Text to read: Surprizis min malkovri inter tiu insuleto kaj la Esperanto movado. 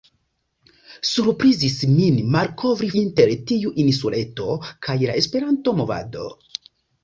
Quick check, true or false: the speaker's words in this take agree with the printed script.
true